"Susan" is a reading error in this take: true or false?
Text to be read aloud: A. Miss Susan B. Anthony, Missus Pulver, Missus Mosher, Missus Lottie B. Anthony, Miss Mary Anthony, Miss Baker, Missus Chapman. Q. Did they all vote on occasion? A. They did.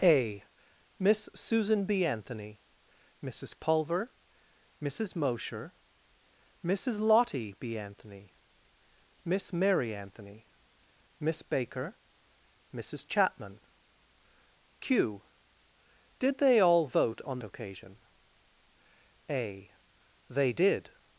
false